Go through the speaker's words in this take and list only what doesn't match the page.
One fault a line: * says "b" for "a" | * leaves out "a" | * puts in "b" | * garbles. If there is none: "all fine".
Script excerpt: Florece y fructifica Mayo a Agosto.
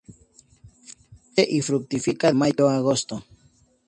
all fine